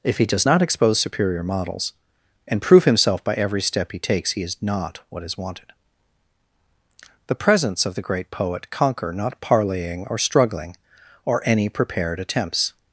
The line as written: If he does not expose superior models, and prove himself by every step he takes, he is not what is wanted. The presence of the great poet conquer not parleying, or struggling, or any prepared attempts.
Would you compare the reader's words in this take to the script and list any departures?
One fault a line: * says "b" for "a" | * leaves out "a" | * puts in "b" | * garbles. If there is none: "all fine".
all fine